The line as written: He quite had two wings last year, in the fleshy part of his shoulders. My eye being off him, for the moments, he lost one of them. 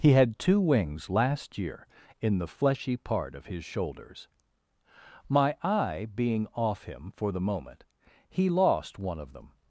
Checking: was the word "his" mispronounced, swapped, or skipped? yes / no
no